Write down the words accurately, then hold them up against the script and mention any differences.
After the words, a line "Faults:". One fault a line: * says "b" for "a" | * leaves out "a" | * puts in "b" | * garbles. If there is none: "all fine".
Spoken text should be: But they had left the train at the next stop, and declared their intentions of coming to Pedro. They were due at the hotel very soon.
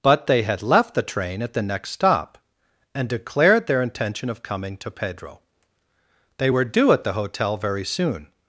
But they had left the train at the next stop, and declared their intention of coming to Pedro. They were due at the hotel very soon.
Faults:
* says "intention" for "intentions"